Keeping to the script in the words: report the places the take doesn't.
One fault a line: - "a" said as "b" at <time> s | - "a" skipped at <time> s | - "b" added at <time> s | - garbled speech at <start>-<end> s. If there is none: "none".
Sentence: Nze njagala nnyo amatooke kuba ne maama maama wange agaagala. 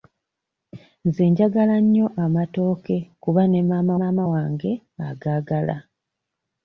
none